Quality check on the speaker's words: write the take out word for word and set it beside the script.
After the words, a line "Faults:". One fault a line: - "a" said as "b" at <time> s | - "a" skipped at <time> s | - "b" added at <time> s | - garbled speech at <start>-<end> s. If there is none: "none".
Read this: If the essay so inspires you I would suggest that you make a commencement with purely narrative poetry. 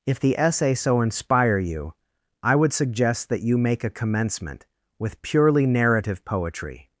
If the essay so inspire you I would suggest that you make a commencement with purely narrative poetry.
Faults:
- "inspires" said as "inspire" at 1.0 s